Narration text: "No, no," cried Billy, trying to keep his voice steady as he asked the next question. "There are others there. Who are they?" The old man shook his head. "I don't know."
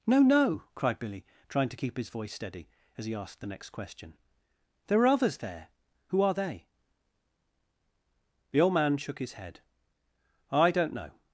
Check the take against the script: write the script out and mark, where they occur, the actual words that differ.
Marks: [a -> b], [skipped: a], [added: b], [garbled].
"No, no," cried Billy, trying to keep his voice steady as he asked the next question. "There are others there. Who are they?" The old man shook his head. "I don't know."